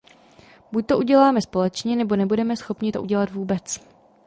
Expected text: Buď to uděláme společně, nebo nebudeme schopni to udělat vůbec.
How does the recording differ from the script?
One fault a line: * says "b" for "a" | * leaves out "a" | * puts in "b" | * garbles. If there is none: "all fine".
all fine